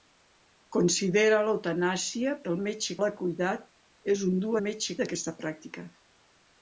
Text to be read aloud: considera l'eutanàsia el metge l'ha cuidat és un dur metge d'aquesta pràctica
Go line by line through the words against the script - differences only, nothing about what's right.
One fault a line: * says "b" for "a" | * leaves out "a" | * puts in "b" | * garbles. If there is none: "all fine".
all fine